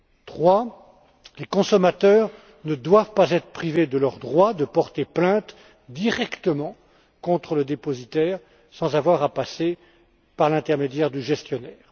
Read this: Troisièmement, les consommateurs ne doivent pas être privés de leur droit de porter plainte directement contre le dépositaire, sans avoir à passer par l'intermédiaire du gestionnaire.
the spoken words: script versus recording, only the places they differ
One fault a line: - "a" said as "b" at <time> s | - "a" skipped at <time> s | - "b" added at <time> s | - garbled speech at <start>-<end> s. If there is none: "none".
none